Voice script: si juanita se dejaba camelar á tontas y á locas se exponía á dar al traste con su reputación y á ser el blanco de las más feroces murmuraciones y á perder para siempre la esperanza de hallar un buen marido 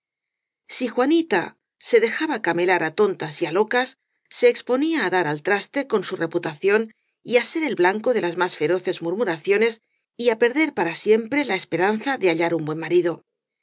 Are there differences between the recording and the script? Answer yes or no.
no